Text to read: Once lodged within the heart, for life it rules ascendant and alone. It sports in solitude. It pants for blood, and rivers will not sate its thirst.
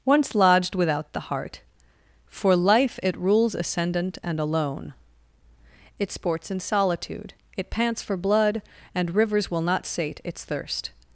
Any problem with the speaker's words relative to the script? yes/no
yes